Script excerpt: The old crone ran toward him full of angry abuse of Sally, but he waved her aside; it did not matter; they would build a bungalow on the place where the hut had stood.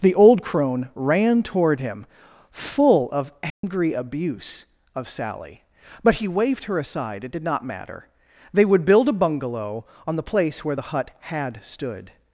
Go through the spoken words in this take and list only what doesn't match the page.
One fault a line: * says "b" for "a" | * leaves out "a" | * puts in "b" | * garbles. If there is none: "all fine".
all fine